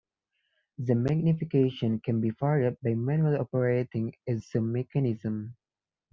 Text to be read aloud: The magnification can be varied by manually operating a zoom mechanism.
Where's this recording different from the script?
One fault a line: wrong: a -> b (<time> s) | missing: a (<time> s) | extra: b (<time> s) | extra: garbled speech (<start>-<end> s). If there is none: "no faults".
no faults